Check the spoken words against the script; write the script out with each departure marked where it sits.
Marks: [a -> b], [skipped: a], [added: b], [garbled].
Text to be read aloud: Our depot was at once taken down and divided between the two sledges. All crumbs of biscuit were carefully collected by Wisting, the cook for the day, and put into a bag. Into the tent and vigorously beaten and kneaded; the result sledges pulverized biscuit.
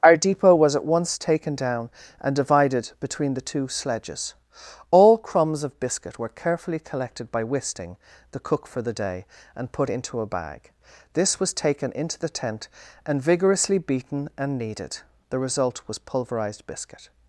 Our depot was at once taken down and divided between the two sledges. All crumbs of biscuit were carefully collected by Wisting, the cook for the day, and put into a bag. [added: This was taken] Into the tent and vigorously beaten and kneaded; the result [sledges -> was] pulverized biscuit.